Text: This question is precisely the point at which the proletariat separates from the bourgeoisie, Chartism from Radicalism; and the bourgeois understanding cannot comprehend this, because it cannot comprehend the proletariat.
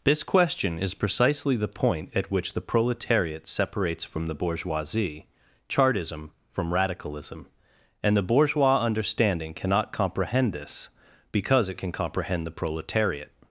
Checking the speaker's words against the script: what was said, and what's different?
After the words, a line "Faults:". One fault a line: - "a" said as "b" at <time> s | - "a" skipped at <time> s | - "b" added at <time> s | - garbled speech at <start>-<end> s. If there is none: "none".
This question is precisely the point at which the proletariat separates from the bourgeoisie, Chartism from Radicalism; and the bourgeois understanding cannot comprehend this, because it can comprehend the proletariat.
Faults:
- "cannot" said as "can" at 11.8 s